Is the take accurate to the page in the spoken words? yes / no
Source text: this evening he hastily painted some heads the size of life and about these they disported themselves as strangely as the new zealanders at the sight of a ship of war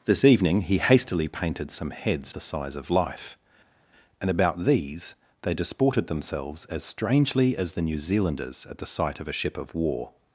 yes